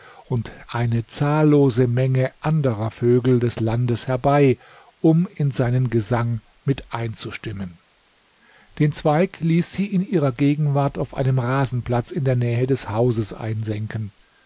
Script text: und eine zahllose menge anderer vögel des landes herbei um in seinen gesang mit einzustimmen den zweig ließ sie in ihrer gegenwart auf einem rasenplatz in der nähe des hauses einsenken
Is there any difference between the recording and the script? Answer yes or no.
no